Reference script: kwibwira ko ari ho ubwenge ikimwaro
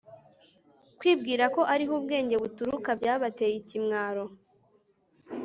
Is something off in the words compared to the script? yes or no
yes